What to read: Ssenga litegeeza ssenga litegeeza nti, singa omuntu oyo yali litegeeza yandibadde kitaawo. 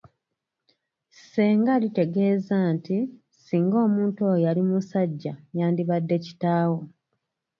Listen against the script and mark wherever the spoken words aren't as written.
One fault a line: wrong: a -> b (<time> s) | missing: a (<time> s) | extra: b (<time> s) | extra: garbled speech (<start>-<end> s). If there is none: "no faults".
missing: ssenga litegeeza (2.6 s)
wrong: litegeeza -> musajja (4.7 s)